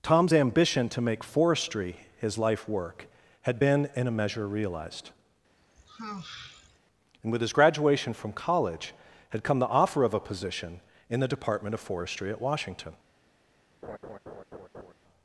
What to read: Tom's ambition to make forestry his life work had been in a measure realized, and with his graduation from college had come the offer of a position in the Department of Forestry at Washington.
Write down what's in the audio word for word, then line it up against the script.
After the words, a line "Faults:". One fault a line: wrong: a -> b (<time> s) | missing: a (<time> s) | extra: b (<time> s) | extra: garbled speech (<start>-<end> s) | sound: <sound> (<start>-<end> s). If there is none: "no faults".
Tom's ambition to make forestry his life work had been in a measure realized, and with his graduation from college had come the offer of a position in the Department of Forestry at Washington.
Faults:
sound: sigh (5.6-6.8 s)
sound: laugh (13.8-14.9 s)